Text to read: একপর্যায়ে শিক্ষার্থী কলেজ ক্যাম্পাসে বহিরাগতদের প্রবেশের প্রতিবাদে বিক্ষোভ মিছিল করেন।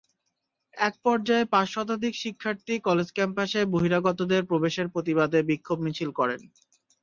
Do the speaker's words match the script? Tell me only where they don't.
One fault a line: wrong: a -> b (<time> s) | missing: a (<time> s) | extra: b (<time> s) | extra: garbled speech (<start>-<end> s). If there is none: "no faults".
extra: পাঁচ শতাধিক (1.5 s)